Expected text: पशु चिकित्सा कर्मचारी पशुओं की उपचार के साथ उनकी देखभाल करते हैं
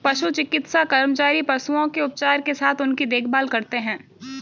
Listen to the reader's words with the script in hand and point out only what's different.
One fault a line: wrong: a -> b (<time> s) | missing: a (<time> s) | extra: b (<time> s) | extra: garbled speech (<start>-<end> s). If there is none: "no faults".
wrong: की -> के (1.9 s)